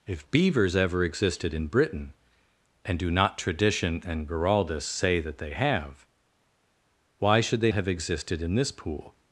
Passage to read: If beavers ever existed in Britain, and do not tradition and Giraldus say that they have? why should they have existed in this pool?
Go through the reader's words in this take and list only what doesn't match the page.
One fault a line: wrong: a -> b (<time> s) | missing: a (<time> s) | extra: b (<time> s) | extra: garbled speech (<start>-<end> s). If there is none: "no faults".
no faults